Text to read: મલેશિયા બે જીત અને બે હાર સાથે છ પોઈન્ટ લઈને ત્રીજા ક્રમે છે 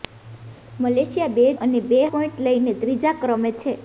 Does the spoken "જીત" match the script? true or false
false